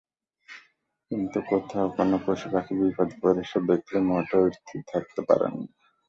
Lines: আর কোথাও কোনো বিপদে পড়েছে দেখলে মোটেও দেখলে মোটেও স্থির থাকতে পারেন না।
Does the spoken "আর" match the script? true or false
false